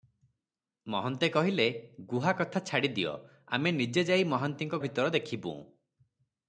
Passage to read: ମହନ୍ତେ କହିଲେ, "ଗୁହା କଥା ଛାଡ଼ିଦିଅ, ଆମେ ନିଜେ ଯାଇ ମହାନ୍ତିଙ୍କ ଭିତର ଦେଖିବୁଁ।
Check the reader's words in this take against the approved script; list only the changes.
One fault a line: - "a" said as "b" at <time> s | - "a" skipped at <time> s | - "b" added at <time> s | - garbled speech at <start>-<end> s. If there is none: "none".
none